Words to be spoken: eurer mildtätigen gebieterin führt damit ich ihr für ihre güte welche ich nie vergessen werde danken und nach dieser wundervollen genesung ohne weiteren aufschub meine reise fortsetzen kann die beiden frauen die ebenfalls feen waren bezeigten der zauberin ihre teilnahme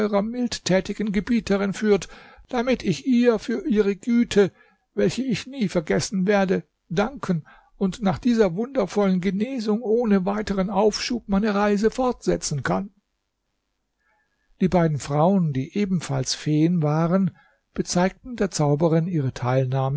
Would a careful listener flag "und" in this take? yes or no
no